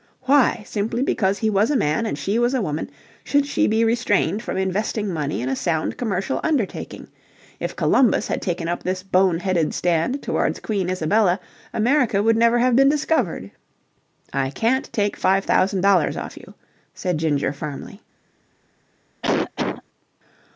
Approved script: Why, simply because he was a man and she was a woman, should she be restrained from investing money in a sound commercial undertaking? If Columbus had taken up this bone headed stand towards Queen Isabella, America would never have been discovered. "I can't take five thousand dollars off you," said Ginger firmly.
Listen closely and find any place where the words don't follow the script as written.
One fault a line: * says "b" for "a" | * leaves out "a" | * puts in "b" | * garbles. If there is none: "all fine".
all fine